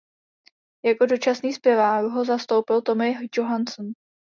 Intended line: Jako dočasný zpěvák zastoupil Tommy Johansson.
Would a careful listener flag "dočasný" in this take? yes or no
no